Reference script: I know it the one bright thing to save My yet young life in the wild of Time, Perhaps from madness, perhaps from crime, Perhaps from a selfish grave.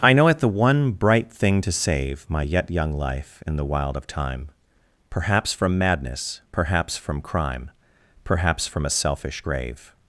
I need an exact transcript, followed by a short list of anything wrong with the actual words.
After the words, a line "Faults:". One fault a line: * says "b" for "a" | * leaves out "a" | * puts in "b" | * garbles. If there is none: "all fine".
I know it the one bright thing to save My yet young life in the wild of Time, Perhaps from madness, perhaps from crime, Perhaps from a selfish grave.
Faults:
all fine